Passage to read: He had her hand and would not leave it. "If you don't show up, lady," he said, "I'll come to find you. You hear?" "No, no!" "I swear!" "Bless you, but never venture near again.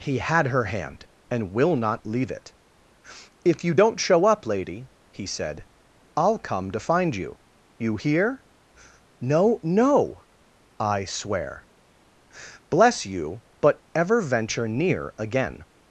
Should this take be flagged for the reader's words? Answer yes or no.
yes